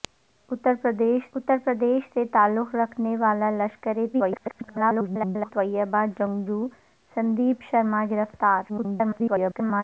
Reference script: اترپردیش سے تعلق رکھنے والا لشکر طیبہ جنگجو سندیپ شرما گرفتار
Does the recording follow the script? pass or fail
fail